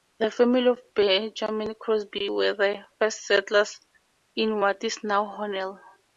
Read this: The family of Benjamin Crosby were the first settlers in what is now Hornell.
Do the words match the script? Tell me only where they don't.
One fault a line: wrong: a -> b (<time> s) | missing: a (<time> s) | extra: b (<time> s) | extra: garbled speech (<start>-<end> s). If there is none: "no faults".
no faults